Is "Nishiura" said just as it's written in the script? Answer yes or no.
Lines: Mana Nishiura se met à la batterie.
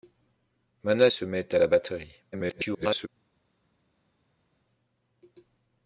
no